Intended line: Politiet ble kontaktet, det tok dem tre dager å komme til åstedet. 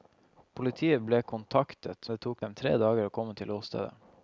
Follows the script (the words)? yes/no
yes